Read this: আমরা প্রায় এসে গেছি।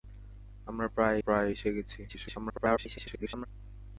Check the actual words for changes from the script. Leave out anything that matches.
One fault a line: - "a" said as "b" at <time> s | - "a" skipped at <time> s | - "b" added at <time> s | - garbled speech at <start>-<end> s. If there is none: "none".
- "প্রায়" added at 1.2 s
- garbled speech at 2.1-3.5 s